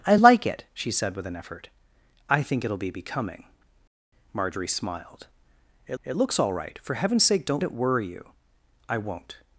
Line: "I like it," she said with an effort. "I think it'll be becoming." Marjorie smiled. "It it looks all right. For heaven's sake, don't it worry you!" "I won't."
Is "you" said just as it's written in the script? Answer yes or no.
yes